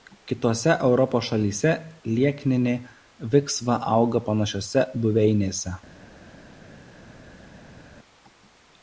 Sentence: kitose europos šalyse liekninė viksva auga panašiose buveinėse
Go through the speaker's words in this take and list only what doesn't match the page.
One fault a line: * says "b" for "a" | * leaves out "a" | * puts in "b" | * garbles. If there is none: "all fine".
all fine